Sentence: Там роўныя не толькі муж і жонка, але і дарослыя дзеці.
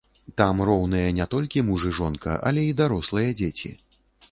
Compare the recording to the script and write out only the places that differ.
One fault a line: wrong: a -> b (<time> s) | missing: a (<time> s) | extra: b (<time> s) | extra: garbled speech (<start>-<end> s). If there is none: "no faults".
no faults